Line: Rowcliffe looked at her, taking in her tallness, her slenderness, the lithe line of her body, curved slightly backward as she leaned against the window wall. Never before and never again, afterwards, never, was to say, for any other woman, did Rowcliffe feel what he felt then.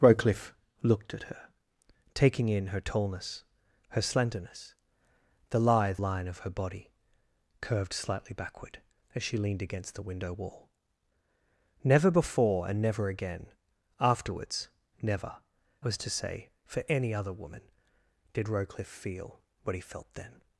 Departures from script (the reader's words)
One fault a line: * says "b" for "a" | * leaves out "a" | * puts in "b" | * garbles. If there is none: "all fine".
all fine